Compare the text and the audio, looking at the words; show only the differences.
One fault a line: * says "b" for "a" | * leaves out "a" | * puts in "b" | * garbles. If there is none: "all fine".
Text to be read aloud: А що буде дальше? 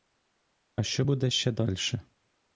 * puts in "ще"